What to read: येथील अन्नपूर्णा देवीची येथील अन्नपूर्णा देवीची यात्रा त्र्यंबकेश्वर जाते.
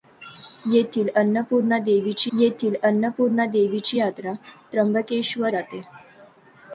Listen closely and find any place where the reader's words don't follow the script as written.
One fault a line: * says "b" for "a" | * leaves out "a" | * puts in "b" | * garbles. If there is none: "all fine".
all fine